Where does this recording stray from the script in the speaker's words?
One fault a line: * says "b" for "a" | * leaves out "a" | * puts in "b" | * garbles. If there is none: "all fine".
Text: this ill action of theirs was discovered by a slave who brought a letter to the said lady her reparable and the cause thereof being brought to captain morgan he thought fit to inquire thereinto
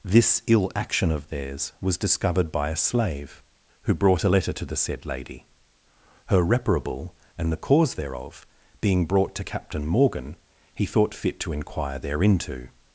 all fine